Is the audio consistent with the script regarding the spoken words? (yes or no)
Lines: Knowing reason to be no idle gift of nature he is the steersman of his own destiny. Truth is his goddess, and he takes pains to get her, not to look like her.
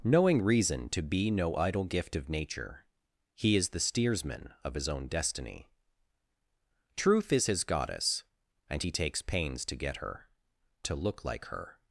no